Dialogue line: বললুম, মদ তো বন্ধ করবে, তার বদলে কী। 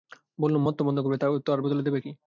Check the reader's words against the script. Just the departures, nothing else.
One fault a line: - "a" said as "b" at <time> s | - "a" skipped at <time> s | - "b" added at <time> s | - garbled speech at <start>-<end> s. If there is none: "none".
- "দেবে" added at 1.8 s